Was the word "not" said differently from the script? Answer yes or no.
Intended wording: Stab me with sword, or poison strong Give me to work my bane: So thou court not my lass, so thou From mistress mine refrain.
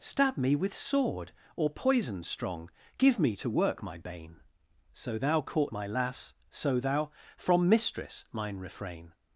yes